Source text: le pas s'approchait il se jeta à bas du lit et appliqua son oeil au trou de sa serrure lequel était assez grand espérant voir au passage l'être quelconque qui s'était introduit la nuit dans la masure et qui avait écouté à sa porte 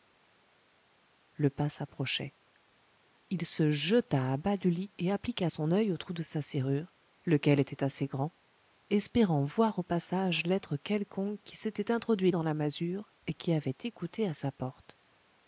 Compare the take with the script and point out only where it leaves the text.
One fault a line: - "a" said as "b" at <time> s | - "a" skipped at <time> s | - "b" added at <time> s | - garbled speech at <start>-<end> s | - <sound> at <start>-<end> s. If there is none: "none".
- "la nuit" skipped at 12.3 s